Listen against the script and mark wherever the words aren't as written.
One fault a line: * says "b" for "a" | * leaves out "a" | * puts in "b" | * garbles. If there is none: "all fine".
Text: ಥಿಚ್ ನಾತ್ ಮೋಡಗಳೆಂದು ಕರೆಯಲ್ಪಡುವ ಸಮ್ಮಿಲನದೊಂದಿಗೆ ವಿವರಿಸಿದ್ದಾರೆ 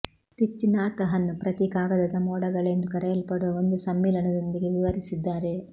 * puts in "ಹನ್ ಪ್ರತಿ ಕಾಗದದ"
* puts in "ಒಂದು"